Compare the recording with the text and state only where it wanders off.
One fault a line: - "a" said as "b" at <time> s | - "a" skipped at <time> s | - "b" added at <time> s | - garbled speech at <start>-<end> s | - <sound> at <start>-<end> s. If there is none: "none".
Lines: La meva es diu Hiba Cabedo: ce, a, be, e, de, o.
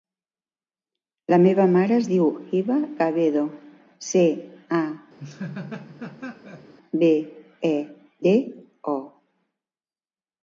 - "mare" added at 1.7 s
- laugh at 5.2-6.7 s